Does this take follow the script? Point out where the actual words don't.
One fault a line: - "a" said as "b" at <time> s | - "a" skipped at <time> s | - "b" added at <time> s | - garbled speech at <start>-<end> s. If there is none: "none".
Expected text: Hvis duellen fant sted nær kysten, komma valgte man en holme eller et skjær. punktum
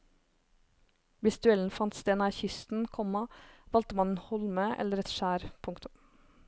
none